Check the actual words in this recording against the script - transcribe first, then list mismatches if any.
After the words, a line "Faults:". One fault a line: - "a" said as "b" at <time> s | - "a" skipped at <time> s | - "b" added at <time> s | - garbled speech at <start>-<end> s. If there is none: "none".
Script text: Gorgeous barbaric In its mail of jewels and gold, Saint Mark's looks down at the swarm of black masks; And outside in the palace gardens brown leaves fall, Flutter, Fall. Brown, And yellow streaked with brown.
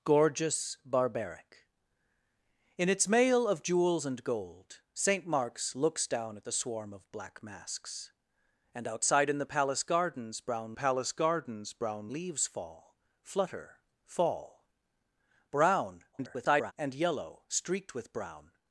Gorgeous barbaric In its mail of jewels and gold, Saint Mark's looks down at the swarm of black masks; And outside in the palace gardens brown palace gardens brown leaves fall, Flutter, Fall. Brown, [garbled] And yellow streaked with brown.
Faults:
- "palace gardens brown" added at 10.7 s
- garbled speech at 16.1-16.7 s